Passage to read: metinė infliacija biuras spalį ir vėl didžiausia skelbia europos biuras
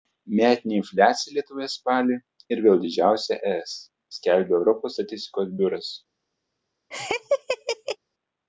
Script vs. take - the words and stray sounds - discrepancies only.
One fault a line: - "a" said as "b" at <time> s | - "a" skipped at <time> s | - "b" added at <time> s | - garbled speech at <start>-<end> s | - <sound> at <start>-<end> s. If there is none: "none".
- "biuras" said as "lietuvoje" at 1.4 s
- "es" added at 3.6 s
- "statistikos" added at 5.0 s
- laugh at 6.9-8.0 s